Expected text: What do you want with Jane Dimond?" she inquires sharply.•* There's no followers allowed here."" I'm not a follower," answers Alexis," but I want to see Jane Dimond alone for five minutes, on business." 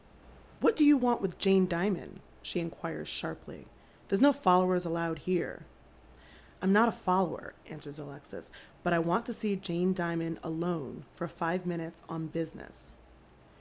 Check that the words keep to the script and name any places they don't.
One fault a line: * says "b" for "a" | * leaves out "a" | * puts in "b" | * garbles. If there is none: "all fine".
all fine